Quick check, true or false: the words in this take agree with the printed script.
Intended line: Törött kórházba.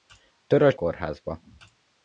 true